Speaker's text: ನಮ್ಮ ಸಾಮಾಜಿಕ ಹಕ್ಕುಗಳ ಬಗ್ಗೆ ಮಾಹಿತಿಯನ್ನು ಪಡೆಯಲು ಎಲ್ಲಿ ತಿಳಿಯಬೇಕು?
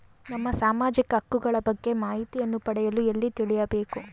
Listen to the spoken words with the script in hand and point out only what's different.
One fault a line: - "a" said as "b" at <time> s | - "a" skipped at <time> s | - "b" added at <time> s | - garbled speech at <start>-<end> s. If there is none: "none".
none